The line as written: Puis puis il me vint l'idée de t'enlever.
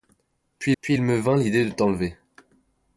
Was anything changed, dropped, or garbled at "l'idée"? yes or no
no